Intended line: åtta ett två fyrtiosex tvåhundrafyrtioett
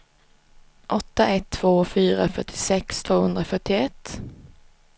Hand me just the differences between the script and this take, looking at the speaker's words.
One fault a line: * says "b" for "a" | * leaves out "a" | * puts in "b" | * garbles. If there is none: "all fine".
* puts in "fyra"